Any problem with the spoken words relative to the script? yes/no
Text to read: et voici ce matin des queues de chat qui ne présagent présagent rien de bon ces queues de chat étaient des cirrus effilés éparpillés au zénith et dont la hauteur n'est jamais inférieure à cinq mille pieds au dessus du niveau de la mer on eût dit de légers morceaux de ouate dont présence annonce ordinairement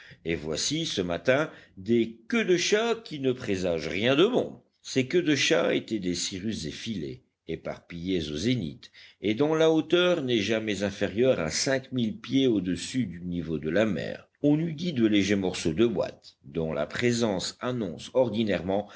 yes